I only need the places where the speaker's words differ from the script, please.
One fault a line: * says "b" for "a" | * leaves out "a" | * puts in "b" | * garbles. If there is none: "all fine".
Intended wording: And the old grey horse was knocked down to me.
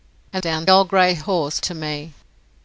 * says "down" for "the"
* leaves out "was knocked down"